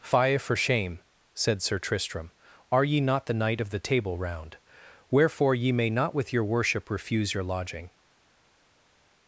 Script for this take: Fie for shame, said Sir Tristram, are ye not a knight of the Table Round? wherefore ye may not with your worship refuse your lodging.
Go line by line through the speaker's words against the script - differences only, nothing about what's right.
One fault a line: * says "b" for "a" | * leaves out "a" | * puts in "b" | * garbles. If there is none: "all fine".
* says "the" for "a"